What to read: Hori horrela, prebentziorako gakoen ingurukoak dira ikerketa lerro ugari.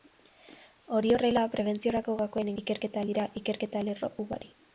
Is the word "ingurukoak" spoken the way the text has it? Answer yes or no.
no